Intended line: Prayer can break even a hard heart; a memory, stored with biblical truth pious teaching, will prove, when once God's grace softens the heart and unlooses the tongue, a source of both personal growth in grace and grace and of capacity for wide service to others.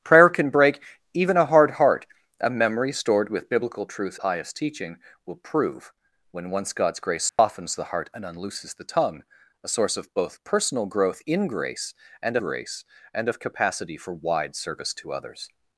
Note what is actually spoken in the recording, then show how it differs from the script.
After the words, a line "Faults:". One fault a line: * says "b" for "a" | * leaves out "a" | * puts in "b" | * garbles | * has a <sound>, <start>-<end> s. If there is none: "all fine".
Prayer can break even a hard heart; a memory, stored with biblical truth pious teaching, will prove, when once God's grace softens the heart and unlooses the tongue, a source of both personal growth in grace and grace and of capacity for wide service to others.
Faults:
* has a dropout, 7.3-7.4 s